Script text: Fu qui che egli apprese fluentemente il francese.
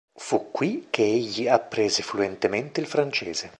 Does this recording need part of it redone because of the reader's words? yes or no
no